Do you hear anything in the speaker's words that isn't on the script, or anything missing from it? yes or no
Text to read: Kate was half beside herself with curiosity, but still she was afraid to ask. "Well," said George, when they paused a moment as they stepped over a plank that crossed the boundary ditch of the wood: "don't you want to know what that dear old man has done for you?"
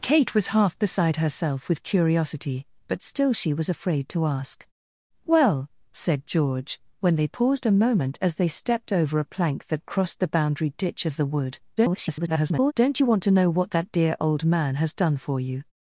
yes